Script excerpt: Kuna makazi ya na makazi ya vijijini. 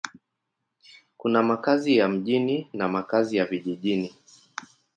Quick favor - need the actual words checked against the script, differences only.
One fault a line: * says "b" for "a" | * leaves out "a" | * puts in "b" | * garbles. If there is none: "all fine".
* puts in "mjini"